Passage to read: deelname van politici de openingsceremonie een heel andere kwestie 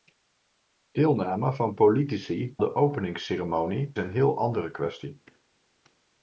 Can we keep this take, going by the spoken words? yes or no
yes